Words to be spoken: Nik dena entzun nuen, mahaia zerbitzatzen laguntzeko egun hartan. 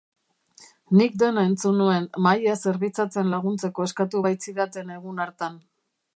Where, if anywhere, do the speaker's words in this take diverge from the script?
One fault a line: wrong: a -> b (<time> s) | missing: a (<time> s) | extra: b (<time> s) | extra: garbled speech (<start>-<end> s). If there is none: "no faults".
extra: eskatu baitzidaten (3.9 s)